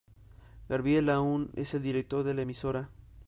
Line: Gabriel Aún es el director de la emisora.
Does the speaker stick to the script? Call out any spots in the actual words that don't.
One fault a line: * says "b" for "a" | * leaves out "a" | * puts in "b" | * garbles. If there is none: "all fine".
all fine